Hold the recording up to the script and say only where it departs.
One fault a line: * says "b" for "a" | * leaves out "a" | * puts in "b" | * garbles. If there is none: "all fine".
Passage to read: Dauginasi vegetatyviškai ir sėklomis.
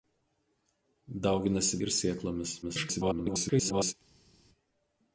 * leaves out "vegetatyviškai"
* garbles